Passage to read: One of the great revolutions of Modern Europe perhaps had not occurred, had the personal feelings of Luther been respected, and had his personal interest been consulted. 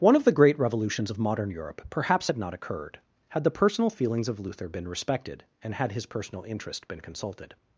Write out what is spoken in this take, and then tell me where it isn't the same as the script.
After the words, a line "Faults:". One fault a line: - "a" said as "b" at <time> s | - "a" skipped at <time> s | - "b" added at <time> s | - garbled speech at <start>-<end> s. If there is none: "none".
One of the great revolutions of Modern Europe perhaps had not occurred, had the personal feelings of Luther been respected, and had his personal interest been consulted.
Faults:
none